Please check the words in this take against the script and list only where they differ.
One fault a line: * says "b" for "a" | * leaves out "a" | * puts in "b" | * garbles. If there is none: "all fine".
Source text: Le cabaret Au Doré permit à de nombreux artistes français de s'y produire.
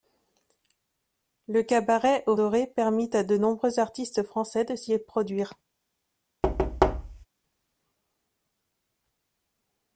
all fine